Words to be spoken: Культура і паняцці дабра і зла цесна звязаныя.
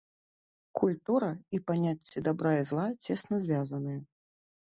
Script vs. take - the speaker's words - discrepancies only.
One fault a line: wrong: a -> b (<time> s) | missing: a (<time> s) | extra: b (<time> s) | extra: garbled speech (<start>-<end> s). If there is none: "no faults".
no faults